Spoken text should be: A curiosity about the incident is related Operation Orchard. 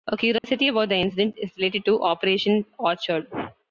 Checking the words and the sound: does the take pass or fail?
fail